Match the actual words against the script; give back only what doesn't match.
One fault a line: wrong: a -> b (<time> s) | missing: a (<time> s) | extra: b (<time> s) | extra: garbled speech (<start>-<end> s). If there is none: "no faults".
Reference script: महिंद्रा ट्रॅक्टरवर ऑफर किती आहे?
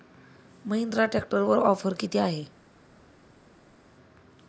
no faults